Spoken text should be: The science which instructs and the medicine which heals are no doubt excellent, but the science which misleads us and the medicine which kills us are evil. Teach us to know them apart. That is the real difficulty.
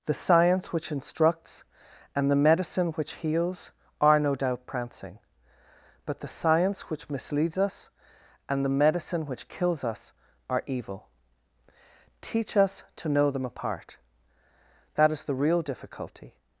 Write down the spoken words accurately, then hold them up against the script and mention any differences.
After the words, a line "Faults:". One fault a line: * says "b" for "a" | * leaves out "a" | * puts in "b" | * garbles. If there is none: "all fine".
The science which instructs and the medicine which heals are no doubt prancing, but the science which misleads us and the medicine which kills us are evil. Teach us to know them apart. That is the real difficulty.
Faults:
* says "prancing" for "excellent"